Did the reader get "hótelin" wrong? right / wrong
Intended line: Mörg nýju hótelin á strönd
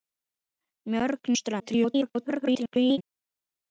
wrong